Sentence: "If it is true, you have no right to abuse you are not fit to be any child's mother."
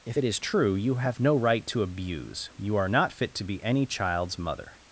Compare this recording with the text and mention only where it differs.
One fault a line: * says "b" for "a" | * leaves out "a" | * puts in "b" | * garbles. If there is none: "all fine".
all fine